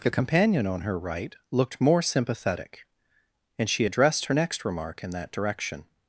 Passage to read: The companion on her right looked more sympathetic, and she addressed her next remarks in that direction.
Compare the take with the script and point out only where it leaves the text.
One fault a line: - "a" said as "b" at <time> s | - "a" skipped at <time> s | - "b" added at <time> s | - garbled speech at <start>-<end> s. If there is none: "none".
- "remarks" said as "remark" at 4.6 s